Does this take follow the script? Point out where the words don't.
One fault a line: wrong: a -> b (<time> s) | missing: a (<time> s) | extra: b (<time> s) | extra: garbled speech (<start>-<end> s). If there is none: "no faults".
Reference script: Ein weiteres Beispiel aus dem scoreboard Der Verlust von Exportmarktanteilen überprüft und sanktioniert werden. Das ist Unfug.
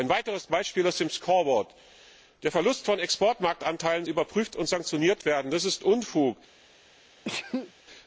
no faults